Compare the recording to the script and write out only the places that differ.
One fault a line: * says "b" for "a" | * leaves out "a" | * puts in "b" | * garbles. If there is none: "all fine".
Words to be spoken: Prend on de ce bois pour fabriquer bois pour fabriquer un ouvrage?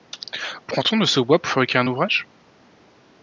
* leaves out "bois pour fabriquer"